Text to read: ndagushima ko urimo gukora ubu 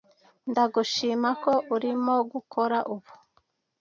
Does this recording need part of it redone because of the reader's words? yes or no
no